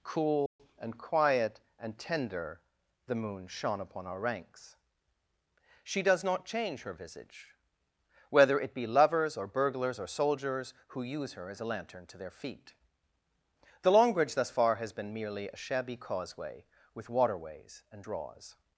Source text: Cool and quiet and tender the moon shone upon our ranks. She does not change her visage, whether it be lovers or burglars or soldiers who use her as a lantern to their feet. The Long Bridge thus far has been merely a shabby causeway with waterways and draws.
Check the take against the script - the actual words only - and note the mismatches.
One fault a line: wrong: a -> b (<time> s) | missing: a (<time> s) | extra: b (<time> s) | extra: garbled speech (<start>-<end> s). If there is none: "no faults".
no faults